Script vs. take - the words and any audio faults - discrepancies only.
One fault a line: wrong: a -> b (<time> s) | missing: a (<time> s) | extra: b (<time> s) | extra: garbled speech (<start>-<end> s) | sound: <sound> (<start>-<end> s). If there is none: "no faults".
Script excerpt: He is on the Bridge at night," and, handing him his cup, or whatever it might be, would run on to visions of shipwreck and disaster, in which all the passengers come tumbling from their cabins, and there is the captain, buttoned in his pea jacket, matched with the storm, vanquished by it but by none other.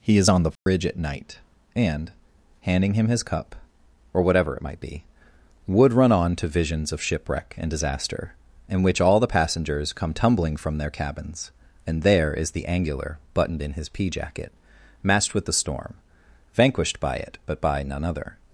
sound: dropout (0.6-0.7 s)
wrong: captain -> angular (12.7 s)